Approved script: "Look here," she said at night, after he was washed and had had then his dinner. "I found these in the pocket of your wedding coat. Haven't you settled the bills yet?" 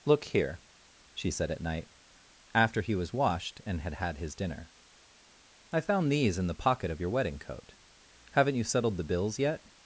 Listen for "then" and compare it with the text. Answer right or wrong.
wrong